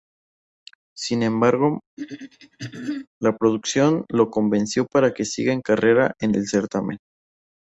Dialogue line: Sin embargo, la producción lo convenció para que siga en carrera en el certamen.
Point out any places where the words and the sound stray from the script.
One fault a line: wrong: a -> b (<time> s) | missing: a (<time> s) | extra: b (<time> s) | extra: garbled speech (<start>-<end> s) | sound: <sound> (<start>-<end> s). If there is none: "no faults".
sound: throat clearing (2.0-3.1 s)